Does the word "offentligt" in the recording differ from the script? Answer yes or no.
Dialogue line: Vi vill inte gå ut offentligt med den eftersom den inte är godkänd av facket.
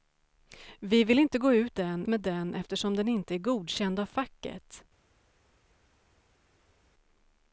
yes